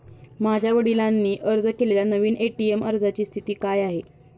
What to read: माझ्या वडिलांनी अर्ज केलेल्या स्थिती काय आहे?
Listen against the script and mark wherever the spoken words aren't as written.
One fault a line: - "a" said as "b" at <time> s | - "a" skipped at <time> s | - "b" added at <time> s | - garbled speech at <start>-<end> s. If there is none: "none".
- "नवीन ए.टी.एम अर्जाची" added at 2.0 s